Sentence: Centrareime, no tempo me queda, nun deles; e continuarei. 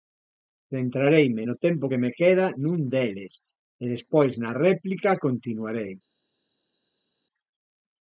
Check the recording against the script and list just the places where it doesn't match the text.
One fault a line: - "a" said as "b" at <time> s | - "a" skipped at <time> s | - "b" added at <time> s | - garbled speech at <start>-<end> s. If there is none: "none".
- "que" added at 1.9 s
- "despois na réplica" added at 3.9 s